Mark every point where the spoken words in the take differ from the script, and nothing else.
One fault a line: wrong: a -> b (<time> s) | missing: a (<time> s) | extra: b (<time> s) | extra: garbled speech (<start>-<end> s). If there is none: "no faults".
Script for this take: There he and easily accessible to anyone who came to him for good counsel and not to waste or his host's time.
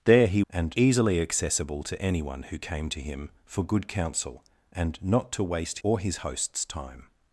no faults